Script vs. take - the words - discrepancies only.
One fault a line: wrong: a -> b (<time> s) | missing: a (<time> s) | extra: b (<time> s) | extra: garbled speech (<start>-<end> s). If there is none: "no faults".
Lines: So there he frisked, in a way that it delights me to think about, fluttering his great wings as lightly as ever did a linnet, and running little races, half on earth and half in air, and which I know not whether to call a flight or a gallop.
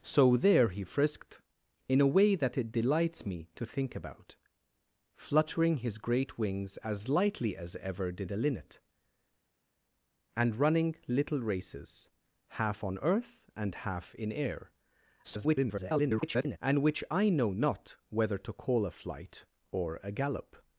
extra: garbled speech (15.2-16.6 s)